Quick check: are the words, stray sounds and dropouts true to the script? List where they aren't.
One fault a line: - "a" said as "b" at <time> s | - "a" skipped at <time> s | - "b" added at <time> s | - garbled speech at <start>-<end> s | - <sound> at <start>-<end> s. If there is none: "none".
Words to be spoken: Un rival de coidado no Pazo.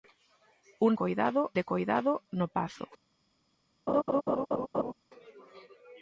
- "rival" said as "coidado" at 0.9 s
- laugh at 3.9-4.9 s